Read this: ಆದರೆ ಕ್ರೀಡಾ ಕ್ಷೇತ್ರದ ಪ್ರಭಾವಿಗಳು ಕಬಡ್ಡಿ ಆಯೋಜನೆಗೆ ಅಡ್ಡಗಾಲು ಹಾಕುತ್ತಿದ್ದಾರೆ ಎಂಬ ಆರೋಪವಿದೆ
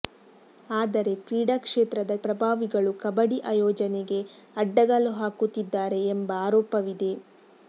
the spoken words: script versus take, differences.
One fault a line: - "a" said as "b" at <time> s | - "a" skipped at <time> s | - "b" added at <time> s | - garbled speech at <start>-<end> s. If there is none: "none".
none